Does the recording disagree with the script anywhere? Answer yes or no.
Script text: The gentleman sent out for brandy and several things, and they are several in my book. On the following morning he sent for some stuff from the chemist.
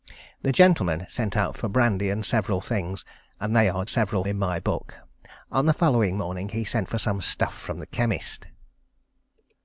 no